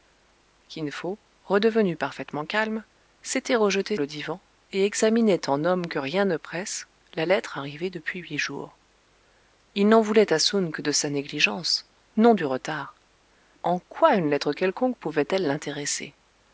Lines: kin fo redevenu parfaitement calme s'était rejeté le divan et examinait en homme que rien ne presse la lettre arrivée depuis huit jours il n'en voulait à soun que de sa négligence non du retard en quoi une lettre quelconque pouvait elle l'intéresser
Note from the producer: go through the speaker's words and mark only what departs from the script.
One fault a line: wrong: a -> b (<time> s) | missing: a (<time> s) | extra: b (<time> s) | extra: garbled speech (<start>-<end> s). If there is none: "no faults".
no faults